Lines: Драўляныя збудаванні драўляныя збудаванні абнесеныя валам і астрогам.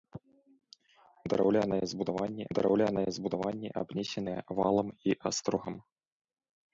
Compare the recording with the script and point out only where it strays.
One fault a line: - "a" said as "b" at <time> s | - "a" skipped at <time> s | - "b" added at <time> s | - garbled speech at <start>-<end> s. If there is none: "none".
none